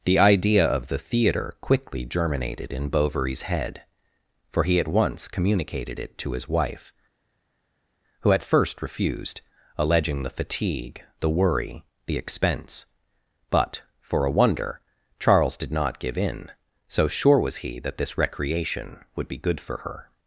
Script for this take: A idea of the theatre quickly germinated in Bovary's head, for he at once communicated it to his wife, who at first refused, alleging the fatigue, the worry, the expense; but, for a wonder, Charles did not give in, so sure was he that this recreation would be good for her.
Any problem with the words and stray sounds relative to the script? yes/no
yes